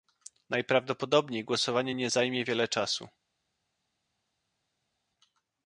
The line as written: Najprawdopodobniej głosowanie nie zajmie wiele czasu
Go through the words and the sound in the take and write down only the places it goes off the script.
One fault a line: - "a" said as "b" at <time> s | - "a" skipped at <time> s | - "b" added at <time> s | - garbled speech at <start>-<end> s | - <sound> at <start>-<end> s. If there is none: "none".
none